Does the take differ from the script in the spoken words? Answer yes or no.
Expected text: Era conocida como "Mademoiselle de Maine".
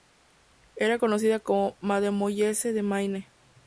no